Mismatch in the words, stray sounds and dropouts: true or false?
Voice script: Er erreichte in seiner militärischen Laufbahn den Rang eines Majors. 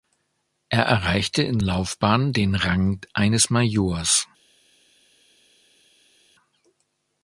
true